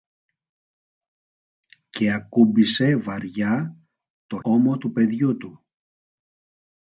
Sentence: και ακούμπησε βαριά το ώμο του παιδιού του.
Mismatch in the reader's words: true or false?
false